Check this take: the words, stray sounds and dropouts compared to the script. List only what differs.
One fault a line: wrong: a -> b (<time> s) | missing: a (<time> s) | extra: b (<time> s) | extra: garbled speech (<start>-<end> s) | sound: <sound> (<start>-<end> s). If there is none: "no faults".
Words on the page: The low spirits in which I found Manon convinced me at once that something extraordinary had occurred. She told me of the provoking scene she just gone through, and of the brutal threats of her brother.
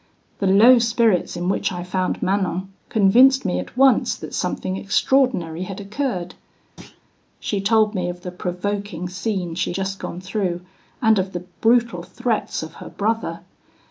sound: thud (6.8-7.0 s)